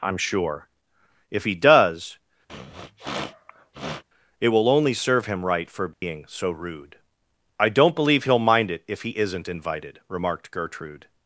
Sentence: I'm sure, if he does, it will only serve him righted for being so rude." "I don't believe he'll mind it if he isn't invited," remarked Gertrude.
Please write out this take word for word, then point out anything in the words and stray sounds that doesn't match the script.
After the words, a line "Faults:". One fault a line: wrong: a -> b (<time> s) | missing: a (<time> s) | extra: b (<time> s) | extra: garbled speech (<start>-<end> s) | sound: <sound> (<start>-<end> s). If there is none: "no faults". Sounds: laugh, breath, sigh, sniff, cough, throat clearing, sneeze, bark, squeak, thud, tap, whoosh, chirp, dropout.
I'm sure, if he does, it will only serve him right for being so rude." "I don't believe he'll mind it if he isn't invited," remarked Gertrude.
Faults:
sound: sniff (2.5-4.0 s)
wrong: righted -> right (5.4 s)
sound: dropout (5.9-6.0 s)